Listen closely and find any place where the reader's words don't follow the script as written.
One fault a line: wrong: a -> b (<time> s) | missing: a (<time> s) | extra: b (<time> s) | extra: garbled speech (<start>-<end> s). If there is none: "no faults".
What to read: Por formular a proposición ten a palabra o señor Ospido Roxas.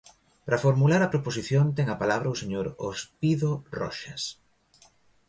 wrong: Por -> Para (0.5 s)